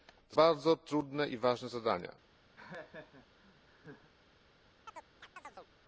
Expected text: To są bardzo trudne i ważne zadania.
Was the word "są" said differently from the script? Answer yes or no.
yes